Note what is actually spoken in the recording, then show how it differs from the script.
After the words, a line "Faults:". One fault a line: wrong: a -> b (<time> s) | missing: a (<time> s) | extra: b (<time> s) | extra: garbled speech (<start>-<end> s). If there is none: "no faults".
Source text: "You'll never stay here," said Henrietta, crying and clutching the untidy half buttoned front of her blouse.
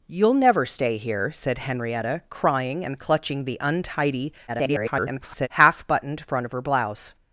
"You'll never stay here," said Henrietta, crying and clutching the untidy [garbled] half buttoned front of her blouse.
Faults:
extra: garbled speech (4.5-5.5 s)